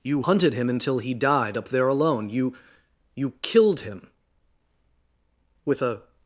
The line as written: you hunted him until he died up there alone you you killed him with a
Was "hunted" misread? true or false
false